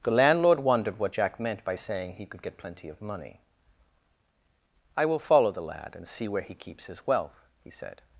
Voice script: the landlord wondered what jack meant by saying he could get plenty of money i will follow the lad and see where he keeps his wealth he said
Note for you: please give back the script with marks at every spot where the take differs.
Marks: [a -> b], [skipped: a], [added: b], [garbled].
the landlord wondered what jack meant by saying he could get plenty of money i will follow the lad and see where he keeps his wealth he said